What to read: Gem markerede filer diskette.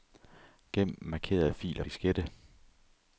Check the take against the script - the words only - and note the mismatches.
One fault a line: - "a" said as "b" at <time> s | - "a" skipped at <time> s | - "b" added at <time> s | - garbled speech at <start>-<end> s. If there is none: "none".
none